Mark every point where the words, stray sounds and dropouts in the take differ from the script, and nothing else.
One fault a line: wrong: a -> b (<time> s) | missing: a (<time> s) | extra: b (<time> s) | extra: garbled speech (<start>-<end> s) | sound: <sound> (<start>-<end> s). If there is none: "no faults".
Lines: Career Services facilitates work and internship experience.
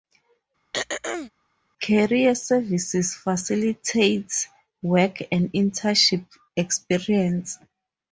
sound: throat clearing (0.7-1.3 s)